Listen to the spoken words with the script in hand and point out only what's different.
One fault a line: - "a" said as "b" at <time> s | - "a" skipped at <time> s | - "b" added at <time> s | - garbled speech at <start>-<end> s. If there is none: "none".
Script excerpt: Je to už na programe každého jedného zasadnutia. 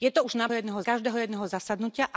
- "programe" said as "jedného" at 0.5 s